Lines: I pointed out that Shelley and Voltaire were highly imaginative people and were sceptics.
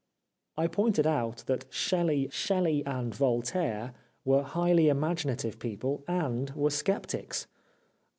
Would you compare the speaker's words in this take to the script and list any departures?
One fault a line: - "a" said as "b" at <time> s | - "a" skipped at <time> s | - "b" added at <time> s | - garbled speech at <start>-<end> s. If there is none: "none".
- "Shelley" added at 2.3 s